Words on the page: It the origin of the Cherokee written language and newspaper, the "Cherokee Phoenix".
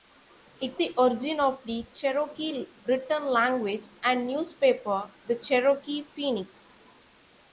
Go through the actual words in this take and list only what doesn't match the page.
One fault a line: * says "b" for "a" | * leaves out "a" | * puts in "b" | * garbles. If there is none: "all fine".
all fine